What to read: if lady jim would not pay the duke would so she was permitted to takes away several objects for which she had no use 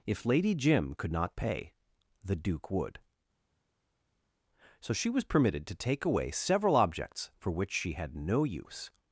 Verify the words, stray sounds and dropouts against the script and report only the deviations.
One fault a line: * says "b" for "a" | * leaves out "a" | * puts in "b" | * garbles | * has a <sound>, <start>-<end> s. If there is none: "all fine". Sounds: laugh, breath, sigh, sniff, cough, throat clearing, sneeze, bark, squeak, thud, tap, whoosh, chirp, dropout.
* says "could" for "would"
* says "take" for "takes"